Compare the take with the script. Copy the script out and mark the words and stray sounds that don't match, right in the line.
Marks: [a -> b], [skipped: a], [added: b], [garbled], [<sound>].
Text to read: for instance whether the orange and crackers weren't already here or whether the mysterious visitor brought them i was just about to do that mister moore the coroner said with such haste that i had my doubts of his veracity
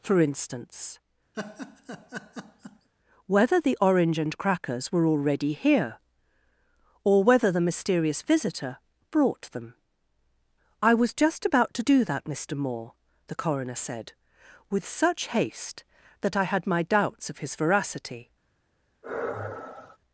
for instance [laugh] whether the orange and crackers [weren't -> were] already here or whether the mysterious visitor brought them i was just about to do that mister moore the coroner said with such haste that i had my doubts of his veracity [sigh]